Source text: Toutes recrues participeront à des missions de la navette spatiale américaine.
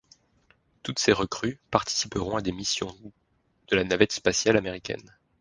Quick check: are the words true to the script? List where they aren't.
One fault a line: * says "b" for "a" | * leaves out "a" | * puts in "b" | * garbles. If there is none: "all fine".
* puts in "ces"